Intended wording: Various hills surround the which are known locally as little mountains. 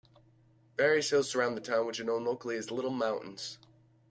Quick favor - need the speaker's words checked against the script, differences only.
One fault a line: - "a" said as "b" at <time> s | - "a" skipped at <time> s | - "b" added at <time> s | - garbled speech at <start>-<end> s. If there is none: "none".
- "town" added at 1.6 s